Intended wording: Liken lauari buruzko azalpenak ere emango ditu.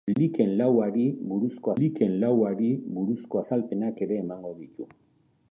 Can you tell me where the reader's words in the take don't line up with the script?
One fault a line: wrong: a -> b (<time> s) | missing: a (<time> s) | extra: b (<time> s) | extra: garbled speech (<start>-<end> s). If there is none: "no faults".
extra: liken lauari buruzko (1.8 s)